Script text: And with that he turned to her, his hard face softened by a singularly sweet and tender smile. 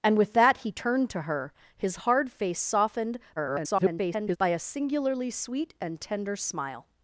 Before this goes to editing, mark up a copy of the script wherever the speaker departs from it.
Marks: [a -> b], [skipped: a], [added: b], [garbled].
And with that he turned to her, his hard face softened [garbled] by a singularly sweet and tender smile.